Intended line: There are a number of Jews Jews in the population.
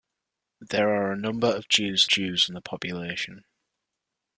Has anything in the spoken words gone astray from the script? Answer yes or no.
no